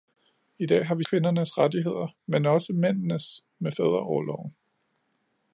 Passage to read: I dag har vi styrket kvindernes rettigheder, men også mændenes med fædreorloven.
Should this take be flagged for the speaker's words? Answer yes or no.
yes